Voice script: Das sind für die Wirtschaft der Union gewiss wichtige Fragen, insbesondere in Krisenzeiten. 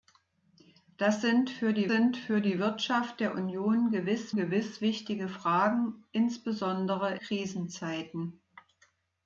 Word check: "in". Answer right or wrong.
wrong